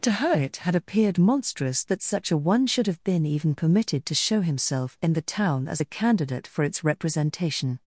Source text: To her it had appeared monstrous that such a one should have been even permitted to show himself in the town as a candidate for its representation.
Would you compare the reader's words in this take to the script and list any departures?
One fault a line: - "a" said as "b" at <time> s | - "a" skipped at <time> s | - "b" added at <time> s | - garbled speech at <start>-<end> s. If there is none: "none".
none